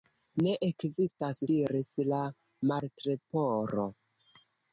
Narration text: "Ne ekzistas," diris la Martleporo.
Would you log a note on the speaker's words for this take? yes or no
no